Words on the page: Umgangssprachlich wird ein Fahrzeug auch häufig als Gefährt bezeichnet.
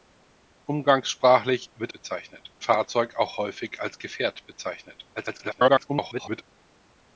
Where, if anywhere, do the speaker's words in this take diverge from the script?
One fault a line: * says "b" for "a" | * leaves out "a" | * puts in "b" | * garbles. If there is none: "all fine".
* says "bezeichnet" for "ein"
* garbles